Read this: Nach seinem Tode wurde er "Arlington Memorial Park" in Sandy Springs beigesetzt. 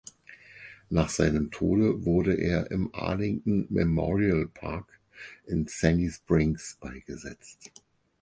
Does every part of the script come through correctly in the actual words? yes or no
no